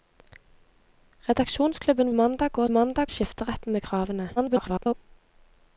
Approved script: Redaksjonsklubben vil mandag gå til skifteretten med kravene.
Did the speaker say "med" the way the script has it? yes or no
yes